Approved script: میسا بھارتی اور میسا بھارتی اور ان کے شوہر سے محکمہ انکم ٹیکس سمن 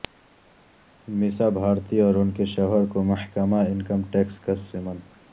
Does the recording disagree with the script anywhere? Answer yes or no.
yes